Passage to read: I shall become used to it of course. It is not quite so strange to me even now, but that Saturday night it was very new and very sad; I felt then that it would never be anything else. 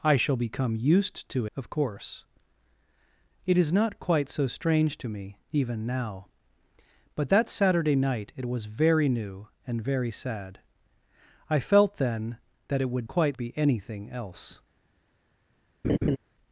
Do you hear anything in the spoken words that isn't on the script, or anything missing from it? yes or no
yes